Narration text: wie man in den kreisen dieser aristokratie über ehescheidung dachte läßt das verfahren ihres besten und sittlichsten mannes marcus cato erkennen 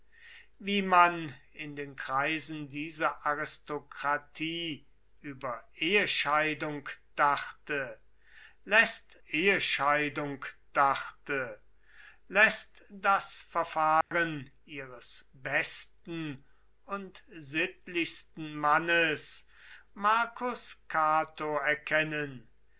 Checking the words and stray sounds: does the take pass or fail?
fail